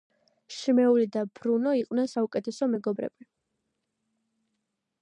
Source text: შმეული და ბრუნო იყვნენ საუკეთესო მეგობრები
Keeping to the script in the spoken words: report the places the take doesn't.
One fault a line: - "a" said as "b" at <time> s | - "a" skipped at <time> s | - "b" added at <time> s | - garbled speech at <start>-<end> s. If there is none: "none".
none